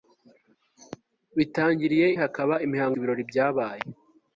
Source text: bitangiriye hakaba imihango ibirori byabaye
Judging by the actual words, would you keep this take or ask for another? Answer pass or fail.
pass